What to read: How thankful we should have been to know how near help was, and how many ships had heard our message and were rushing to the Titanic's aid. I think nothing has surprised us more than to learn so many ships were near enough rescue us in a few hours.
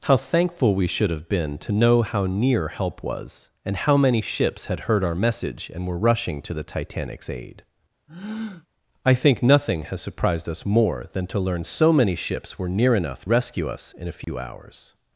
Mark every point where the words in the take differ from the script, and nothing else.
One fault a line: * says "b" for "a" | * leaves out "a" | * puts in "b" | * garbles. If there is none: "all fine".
all fine